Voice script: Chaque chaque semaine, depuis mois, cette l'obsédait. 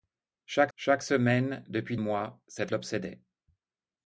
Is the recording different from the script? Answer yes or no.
no